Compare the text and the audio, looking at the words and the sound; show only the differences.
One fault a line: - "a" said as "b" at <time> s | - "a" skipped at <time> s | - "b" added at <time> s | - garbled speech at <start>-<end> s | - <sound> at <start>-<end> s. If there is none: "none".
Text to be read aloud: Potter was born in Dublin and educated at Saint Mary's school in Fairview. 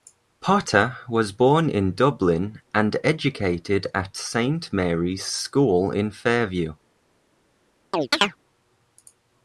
- chirp at 7.9-8.4 s